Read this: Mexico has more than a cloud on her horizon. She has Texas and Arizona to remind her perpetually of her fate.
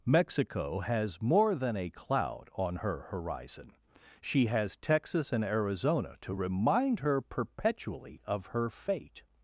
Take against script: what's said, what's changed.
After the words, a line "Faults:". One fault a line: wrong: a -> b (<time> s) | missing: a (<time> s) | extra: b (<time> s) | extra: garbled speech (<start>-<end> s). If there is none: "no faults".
Mexico has more than a cloud on her horizon. She has Texas and Arizona to remind her perpetually of her fate.
Faults:
no faults